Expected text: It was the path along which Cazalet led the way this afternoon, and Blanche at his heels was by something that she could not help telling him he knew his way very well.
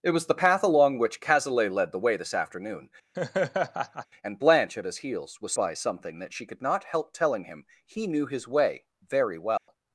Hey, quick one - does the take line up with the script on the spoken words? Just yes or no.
yes